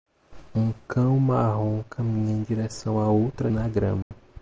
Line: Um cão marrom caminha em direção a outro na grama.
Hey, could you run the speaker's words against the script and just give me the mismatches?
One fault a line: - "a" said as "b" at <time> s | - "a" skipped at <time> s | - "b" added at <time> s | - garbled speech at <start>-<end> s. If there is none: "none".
none